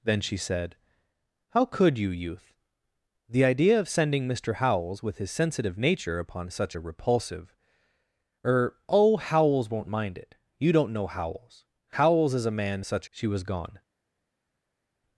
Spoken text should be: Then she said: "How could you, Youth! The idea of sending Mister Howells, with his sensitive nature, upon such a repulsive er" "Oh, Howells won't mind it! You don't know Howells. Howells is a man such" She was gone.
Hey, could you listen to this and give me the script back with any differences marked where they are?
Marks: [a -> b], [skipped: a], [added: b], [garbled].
Then she said: "How could you, Youth! The idea of sending Mister Howells, with his sensitive nature, upon such a repulsive er" "Oh, Howells won't mind it! You don't know Howells. Howells is a man such" She was gone.